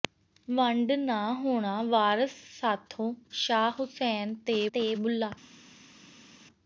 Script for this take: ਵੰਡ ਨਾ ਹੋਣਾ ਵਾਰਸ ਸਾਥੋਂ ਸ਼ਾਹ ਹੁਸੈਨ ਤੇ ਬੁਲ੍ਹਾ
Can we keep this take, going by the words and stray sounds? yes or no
no